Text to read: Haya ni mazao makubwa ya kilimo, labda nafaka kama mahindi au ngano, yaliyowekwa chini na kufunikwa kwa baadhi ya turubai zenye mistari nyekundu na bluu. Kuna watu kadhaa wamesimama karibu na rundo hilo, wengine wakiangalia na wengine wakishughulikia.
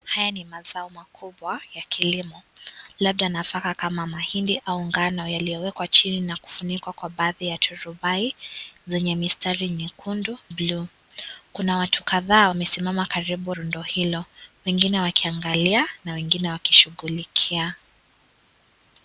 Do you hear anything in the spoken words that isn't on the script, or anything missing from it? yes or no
yes